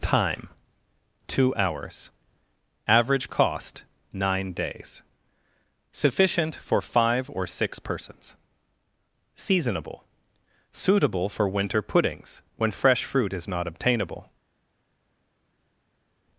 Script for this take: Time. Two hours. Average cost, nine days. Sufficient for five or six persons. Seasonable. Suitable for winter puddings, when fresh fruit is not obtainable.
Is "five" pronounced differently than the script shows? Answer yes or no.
no